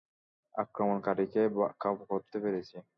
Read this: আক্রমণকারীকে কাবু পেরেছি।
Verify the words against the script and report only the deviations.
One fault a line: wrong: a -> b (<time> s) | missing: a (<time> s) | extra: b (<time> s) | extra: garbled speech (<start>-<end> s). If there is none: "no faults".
extra: করতে (2.1 s)